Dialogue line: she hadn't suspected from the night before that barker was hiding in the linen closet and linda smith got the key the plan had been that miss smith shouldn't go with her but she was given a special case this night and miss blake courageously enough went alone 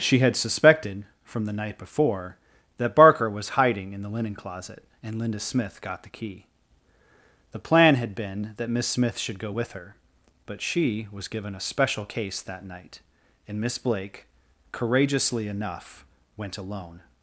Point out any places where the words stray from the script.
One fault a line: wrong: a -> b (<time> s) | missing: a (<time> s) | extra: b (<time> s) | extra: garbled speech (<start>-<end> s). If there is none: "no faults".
wrong: hadn't -> had (0.2 s)
wrong: shouldn't -> should (9.2 s)
wrong: this -> that (12.4 s)